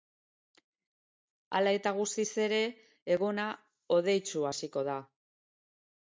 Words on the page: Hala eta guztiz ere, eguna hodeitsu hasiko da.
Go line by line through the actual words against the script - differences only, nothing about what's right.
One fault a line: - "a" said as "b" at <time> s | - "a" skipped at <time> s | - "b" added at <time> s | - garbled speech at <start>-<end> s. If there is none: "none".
none